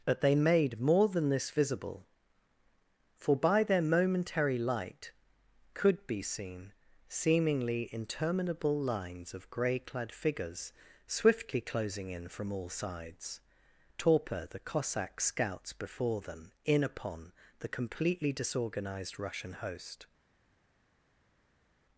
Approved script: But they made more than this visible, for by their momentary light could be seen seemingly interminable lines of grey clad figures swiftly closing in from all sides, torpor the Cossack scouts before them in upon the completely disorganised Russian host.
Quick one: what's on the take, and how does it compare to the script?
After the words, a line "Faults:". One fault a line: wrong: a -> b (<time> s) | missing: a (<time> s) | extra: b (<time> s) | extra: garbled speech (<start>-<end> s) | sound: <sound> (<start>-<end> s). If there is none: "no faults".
But they made more than this visible, for by their momentary light could be seen seemingly interminable lines of grey clad figures swiftly closing in from all sides, torpor the Cossack scouts before them in upon the completely disorganised Russian host.
Faults:
no faults